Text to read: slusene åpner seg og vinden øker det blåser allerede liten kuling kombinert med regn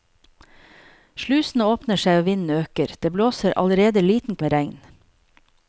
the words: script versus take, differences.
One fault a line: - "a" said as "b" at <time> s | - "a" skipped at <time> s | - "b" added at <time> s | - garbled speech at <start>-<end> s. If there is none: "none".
- "kuling kombinert" skipped at 4.4 s